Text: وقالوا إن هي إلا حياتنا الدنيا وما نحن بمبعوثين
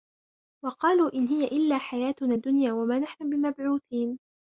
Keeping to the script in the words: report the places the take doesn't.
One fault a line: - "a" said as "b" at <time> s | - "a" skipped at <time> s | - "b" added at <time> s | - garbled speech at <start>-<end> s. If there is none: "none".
none